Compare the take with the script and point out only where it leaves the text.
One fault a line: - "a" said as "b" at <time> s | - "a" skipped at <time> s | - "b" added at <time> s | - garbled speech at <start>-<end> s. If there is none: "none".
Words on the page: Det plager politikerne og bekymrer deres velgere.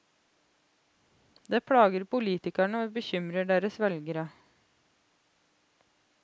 none